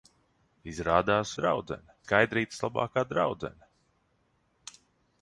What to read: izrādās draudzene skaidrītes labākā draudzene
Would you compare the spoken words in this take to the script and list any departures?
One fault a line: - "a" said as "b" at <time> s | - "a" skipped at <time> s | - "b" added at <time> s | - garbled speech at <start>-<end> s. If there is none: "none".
none